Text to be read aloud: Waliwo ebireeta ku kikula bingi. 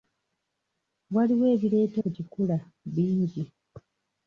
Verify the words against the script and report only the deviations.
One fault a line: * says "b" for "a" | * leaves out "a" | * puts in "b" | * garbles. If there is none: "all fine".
all fine